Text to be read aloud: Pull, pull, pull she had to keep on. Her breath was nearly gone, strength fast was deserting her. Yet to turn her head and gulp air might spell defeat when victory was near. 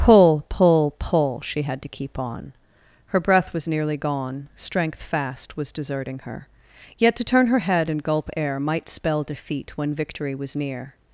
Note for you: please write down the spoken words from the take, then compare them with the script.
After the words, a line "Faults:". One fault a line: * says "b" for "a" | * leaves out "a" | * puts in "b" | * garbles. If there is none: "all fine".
Pull, pull, pull she had to keep on. Her breath was nearly gone, strength fast was deserting her. Yet to turn her head and gulp air might spell defeat when victory was near.
Faults:
all fine